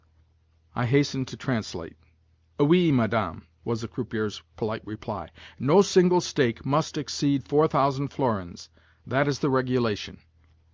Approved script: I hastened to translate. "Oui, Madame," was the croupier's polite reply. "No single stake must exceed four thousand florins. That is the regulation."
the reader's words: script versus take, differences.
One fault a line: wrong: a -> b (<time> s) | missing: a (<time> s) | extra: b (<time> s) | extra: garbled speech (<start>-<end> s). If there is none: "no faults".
no faults